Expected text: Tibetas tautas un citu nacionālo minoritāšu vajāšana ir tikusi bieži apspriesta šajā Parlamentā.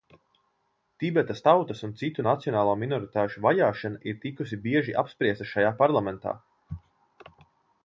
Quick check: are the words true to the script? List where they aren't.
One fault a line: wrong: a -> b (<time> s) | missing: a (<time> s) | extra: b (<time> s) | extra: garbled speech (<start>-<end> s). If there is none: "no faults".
no faults